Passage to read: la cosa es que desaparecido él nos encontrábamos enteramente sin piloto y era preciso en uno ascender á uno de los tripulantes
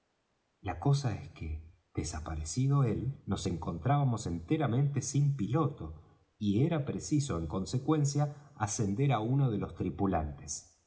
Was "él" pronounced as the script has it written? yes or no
yes